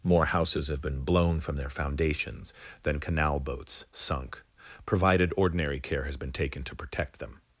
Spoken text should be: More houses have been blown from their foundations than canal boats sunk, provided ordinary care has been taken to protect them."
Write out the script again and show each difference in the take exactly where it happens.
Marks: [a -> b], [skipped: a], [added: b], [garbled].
More houses have been blown from their foundations than canal boats sunk, provided ordinary care has been taken to protect them."